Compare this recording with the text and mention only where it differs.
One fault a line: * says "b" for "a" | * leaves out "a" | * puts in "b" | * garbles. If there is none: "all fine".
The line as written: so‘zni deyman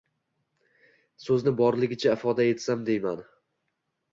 * puts in "borligicha ifoda etsam"